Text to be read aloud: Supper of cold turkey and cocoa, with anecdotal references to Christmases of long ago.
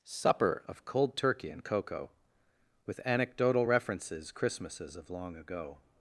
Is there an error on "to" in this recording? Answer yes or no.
yes